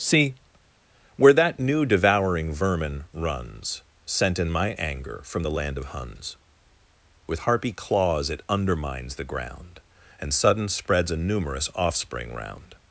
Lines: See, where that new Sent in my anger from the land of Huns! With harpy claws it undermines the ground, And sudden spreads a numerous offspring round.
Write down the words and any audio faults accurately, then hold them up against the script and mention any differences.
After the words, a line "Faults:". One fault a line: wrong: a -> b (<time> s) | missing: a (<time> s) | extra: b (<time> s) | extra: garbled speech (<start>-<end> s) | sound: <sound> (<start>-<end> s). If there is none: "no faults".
See, where that new devouring vermin runs, Sent in my anger from the land of Huns! With harpy claws it undermines the ground, And sudden spreads a numerous offspring round.
Faults:
extra: devouring vermin runs (1.9 s)